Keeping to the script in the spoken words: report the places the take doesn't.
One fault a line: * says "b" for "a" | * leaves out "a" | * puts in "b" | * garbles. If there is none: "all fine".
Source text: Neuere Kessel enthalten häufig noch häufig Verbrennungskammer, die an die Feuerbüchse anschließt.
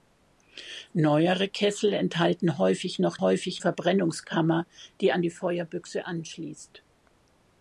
all fine